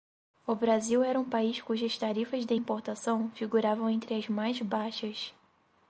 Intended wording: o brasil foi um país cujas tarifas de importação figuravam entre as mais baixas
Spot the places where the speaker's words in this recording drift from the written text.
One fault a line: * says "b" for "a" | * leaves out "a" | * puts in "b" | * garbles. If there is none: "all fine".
* says "era" for "foi"